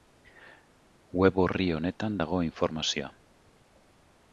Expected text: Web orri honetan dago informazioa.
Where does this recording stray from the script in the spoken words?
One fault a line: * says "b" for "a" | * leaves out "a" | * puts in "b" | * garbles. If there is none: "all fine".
all fine